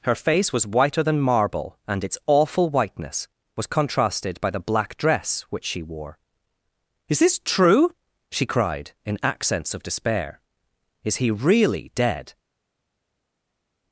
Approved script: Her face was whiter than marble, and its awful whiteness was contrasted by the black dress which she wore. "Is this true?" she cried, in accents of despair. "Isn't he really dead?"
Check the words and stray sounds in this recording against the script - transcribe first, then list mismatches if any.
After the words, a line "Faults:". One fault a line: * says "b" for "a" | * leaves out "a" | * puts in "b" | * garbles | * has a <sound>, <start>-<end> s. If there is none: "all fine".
Her face was whiter than marble, and its awful whiteness was contrasted by the black dress which she wore. "Is this true?" she cried, in accents of despair. "Is he really dead?"
Faults:
* says "Is" for "Isn't"